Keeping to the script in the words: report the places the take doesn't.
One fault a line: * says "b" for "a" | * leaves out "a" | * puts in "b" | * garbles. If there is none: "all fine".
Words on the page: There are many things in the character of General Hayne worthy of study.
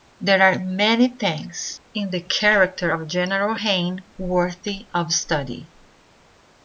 all fine